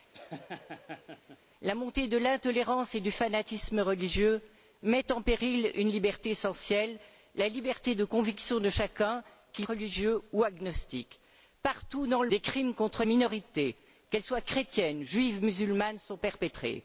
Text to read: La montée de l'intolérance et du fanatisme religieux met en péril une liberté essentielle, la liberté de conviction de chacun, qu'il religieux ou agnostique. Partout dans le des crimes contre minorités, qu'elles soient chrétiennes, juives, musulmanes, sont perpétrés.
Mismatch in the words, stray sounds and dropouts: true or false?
true